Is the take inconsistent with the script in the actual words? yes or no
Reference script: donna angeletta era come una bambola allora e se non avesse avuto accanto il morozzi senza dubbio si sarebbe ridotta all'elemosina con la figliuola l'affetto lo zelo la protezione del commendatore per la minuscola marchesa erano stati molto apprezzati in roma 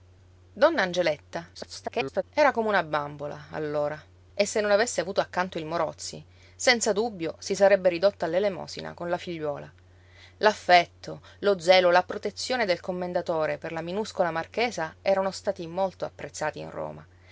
yes